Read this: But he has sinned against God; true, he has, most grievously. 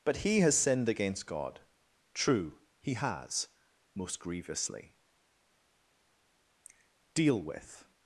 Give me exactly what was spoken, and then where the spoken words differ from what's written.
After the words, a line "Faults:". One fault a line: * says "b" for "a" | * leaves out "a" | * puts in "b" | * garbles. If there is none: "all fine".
But he has sinned against God; true, he has, most grievously. Deal with
Faults:
* puts in "Deal with"